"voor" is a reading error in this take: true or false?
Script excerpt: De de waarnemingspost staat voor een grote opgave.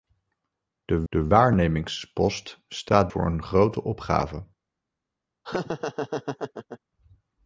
false